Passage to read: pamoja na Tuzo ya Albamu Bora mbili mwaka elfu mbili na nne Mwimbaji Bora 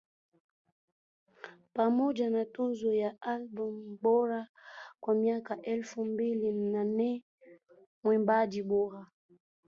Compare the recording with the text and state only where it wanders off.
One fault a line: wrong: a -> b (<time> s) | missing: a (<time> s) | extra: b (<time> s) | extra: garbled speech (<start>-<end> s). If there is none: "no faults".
wrong: mbili -> kwa (5.0 s)